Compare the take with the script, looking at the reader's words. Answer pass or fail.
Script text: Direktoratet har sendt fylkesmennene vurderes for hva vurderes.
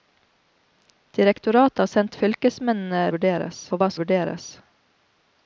pass